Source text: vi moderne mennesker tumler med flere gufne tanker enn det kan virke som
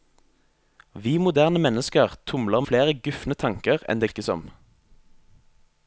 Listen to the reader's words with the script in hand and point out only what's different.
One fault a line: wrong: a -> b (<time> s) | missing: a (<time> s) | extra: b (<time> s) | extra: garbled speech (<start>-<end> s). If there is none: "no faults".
missing: med (2.6 s)
missing: kan (4.1 s)